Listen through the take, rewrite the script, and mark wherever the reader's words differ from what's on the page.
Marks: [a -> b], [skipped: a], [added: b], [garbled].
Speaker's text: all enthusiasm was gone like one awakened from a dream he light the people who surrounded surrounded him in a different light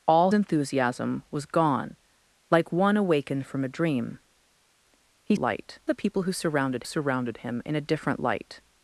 all enthusiasm was gone like one awakened from a dream he light the people who surrounded surrounded him in a different light